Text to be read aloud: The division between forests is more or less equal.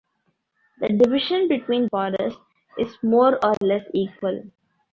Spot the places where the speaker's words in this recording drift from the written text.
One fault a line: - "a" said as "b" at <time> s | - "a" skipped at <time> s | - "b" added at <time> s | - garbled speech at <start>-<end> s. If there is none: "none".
none